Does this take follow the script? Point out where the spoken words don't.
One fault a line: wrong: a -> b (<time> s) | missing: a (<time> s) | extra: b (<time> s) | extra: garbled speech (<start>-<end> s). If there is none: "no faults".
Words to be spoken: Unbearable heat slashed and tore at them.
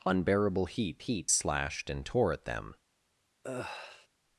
extra: heat (1.0 s)